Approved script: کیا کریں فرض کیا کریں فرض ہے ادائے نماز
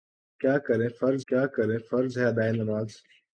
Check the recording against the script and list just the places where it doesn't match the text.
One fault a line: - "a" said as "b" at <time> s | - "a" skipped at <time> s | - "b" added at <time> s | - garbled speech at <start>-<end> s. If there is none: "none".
none